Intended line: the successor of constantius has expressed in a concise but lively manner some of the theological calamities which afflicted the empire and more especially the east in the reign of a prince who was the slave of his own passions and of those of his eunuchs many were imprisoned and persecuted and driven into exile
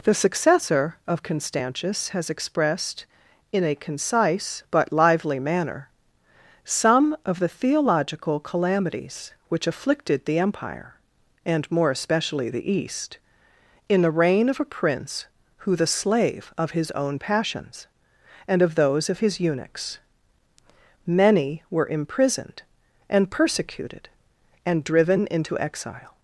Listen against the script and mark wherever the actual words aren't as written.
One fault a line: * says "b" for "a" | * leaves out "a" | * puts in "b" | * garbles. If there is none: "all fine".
* leaves out "was"